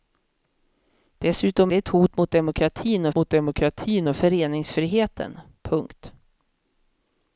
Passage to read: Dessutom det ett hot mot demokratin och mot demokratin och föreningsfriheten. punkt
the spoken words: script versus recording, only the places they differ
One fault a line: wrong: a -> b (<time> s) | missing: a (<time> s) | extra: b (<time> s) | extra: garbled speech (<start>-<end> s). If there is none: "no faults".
no faults